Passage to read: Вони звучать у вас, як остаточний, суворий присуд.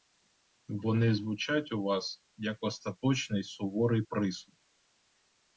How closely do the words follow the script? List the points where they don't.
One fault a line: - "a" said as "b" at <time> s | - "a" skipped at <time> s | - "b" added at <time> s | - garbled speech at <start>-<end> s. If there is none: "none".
none